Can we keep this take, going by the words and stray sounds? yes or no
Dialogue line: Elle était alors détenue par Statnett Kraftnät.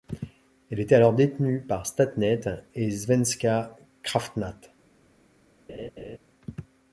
no